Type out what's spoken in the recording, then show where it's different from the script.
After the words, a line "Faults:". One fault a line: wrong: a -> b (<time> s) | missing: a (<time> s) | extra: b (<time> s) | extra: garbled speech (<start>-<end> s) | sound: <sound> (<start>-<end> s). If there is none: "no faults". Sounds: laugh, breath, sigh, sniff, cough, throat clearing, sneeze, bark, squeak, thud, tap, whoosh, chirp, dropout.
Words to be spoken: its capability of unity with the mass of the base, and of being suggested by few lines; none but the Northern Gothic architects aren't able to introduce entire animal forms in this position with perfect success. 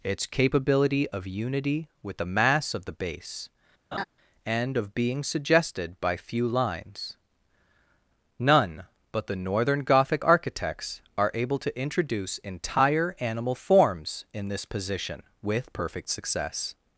its capability of unity with the mass of the base, and of being suggested by few lines; none but the Northern Gothic architects are able to introduce entire animal forms in this position with perfect success.
Faults:
sound: laugh (3.9-4.0 s)
wrong: aren't -> are (11.2 s)